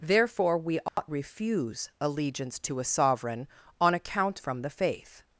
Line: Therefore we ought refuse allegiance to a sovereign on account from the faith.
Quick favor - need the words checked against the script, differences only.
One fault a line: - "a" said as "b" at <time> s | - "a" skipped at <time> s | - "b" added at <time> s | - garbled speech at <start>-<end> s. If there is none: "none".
none